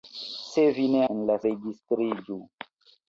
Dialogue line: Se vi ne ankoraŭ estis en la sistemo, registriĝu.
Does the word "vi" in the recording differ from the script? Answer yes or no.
no